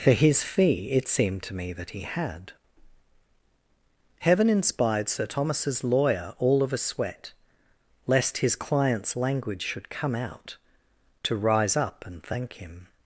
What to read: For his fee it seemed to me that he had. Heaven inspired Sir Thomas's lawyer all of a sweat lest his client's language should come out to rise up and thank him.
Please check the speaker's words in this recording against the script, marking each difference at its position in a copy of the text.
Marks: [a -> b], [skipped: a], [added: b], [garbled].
For his fee it seemed to me that he had. Heaven inspired Sir Thomas's lawyer all of a sweat lest his client's language should come out to rise up and thank him.